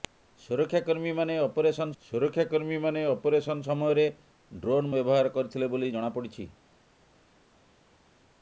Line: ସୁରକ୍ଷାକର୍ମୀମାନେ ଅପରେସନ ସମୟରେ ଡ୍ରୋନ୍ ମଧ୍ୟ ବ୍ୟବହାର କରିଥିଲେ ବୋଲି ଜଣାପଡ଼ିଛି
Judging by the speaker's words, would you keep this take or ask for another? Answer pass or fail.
fail